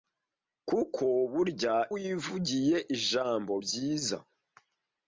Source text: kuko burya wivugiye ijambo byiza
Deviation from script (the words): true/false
false